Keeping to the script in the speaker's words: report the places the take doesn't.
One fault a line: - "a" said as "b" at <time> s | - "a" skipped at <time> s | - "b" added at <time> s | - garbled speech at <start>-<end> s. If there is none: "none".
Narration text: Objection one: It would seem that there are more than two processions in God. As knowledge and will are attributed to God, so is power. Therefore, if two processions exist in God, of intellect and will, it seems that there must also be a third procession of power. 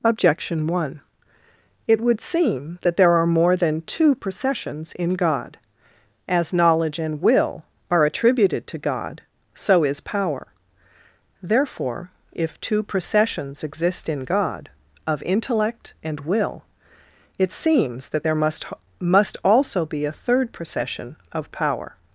- "must" added at 19.0 s